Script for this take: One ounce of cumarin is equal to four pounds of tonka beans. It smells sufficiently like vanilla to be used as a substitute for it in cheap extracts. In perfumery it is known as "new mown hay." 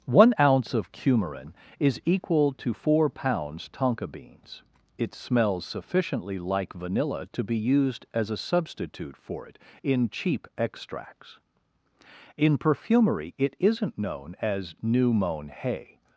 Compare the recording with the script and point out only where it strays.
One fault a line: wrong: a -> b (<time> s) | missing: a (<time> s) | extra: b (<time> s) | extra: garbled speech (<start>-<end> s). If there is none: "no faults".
missing: of (3.7 s)
wrong: is -> isn't (13.6 s)